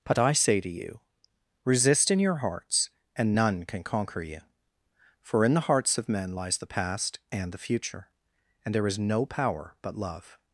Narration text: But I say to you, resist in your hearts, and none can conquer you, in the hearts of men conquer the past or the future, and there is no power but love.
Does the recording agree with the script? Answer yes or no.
no